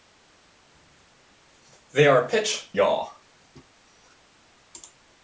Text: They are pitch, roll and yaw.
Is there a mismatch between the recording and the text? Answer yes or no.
yes